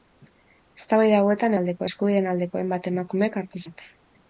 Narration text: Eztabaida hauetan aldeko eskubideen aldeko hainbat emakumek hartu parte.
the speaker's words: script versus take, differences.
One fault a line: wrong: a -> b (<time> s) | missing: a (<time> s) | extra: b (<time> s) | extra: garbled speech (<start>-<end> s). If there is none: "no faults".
no faults